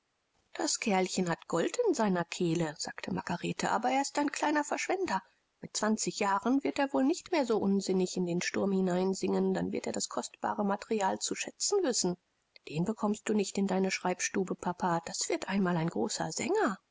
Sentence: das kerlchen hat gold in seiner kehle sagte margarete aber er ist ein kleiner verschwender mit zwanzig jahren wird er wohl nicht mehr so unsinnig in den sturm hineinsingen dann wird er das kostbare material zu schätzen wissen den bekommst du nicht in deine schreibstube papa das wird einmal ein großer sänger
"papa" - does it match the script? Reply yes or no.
yes